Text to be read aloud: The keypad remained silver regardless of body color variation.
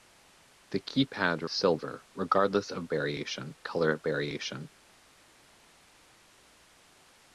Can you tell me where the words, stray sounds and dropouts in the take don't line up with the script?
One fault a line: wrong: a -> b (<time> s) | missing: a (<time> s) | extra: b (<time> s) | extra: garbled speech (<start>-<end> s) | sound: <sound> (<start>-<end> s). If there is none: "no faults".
missing: remained (1.5 s)
wrong: body -> variation (2.9 s)